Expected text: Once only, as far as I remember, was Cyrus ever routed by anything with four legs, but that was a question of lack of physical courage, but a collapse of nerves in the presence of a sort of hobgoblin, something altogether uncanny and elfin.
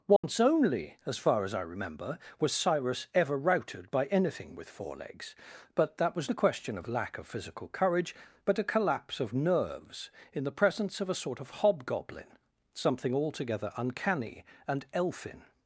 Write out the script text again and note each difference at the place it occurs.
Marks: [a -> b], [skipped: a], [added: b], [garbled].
Once only, as far as I remember, was Cyrus ever routed by anything with four legs, but that was a question of lack of physical courage, but a collapse of nerves in the presence of a sort of hobgoblin, something altogether uncanny and elfin.